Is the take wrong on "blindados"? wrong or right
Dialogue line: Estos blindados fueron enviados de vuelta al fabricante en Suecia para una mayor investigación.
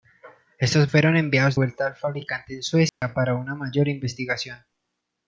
wrong